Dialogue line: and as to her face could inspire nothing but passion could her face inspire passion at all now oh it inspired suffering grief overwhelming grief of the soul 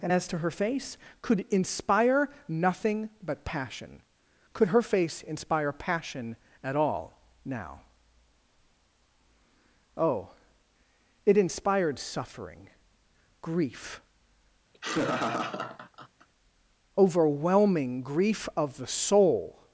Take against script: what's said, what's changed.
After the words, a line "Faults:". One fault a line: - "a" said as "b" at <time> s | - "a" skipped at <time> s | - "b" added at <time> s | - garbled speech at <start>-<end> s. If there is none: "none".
and as to her face could inspire nothing but passion could her face inspire passion at all now oh it inspired suffering grief overwhelming grief of the soul
Faults:
none